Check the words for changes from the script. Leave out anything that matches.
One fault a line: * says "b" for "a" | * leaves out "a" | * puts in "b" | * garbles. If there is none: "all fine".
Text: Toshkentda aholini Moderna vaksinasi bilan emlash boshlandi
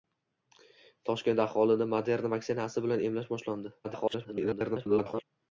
* garbles